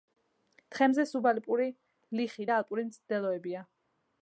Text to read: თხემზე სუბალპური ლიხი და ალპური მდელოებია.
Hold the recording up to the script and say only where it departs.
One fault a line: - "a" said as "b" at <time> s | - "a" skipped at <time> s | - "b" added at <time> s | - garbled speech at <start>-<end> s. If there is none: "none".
none